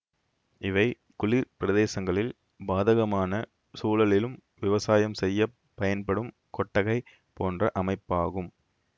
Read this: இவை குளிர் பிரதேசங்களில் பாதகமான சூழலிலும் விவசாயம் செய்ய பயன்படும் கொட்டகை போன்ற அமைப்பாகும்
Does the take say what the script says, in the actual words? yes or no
yes